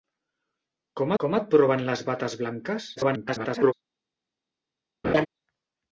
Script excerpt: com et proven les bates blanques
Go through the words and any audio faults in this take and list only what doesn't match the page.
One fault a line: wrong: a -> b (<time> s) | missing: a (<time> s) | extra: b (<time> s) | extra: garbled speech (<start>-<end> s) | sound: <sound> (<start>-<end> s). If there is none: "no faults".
extra: com (1.2 s)
extra: garbled speech (3.0-3.7 s)
sound: laugh (5.0-5.3 s)